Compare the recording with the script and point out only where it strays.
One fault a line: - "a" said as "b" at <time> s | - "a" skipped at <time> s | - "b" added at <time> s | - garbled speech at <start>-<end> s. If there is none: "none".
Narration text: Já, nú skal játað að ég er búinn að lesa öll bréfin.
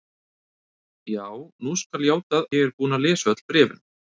- "að" skipped at 2.5 s